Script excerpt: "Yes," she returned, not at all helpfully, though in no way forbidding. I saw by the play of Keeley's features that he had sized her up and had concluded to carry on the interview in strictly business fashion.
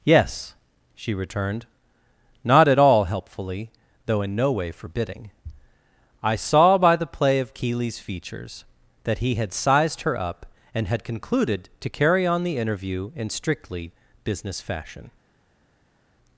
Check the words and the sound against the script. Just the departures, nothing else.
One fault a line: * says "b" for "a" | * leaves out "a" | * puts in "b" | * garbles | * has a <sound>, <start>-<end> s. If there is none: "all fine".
all fine